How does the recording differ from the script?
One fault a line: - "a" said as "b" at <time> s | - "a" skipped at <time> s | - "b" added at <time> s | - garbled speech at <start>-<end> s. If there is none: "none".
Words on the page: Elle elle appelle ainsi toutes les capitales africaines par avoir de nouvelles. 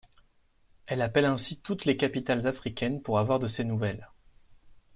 - "elle" skipped at 1.0 s
- "par" said as "pour" at 3.0 s
- "ses" added at 3.5 s